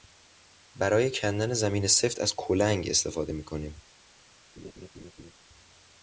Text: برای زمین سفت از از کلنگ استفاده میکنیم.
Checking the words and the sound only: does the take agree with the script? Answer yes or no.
no